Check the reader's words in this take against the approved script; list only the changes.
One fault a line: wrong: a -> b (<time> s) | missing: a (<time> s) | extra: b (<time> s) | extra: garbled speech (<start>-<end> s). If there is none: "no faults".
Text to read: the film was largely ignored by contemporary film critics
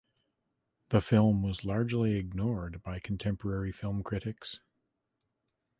no faults